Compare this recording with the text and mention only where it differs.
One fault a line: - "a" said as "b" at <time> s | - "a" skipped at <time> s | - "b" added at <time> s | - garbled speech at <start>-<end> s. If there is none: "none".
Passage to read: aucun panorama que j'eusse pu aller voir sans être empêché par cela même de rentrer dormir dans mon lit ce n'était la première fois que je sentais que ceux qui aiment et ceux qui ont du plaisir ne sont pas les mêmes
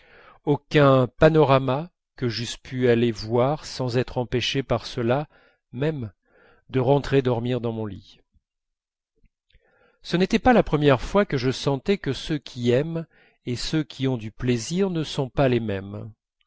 - "pas" added at 10.4 s